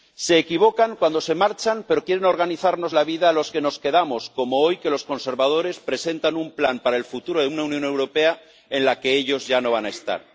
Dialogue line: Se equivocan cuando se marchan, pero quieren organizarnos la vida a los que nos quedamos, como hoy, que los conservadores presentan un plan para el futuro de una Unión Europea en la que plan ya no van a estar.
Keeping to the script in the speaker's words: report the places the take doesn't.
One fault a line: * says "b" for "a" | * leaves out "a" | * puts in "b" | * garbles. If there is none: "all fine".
* says "ellos" for "plan"